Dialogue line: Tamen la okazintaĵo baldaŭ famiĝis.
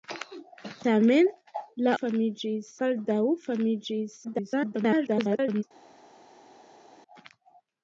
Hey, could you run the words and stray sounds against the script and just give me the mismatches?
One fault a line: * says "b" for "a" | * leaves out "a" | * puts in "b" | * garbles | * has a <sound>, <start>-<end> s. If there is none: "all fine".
* says "famiĝis" for "okazintaĵo"
* garbles